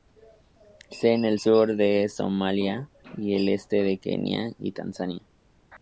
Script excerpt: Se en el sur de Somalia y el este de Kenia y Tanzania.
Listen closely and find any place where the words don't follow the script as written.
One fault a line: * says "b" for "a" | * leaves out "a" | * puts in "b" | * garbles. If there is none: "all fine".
all fine